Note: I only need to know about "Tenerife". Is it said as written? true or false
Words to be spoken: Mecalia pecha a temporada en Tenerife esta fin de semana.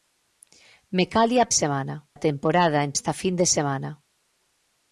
false